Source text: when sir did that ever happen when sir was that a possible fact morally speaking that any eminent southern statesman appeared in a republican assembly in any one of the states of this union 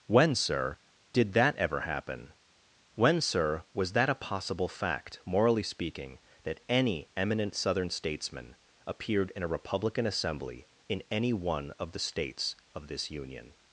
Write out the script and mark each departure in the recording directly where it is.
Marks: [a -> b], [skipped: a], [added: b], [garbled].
when sir did that ever happen when sir was that a possible fact morally speaking that any eminent southern statesman appeared in a republican assembly in any one of the states of this union